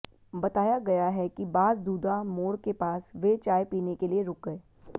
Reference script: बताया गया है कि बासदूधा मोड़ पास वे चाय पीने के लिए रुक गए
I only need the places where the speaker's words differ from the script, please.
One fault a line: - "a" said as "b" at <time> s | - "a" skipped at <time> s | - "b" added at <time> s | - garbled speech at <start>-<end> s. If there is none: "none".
- "के" added at 2.6 s